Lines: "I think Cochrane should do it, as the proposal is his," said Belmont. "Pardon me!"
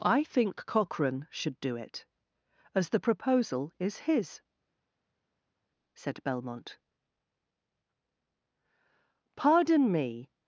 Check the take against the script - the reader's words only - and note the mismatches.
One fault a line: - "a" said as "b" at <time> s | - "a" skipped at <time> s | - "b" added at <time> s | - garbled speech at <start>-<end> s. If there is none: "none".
none